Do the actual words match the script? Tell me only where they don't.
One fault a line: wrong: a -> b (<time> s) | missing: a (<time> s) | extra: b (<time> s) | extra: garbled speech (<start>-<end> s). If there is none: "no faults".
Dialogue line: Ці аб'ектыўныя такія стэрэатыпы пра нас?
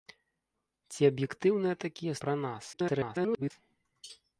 missing: стэрэатыпы (2.1 s)
extra: garbled speech (2.7-3.5 s)